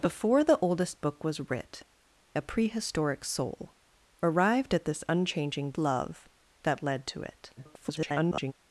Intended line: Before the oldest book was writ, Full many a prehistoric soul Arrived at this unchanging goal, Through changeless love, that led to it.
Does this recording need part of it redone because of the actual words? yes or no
yes